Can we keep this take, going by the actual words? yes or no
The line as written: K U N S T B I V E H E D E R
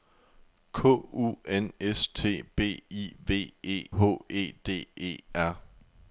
yes